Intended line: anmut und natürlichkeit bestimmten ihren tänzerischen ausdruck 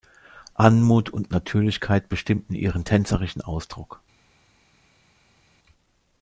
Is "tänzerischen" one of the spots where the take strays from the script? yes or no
no